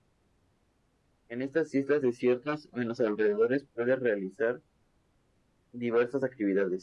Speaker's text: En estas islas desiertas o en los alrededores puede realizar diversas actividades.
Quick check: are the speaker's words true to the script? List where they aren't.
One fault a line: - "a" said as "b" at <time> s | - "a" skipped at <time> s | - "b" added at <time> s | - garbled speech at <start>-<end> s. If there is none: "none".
none